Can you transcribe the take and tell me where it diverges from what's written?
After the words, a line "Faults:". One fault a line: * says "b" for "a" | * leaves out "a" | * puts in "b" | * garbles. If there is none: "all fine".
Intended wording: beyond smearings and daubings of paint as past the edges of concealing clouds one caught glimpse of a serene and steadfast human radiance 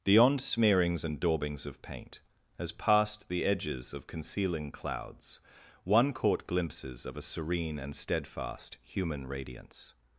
beyond smearings and daubings of paint as past the edges of concealing clouds one caught glimpses of a serene and steadfast human radiance
Faults:
* says "glimpses" for "glimpse"